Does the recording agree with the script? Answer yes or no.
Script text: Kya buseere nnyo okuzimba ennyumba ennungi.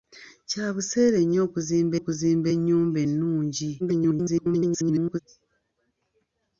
no